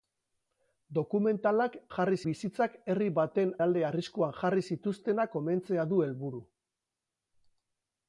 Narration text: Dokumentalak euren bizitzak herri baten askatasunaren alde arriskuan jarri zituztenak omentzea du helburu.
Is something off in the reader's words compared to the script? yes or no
yes